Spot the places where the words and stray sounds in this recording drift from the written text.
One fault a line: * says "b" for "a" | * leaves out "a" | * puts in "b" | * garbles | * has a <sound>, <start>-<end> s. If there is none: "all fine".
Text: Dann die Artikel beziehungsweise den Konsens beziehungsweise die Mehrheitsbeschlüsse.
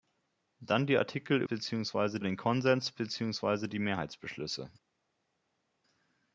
all fine